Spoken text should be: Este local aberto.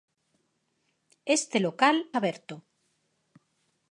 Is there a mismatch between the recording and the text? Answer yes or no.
no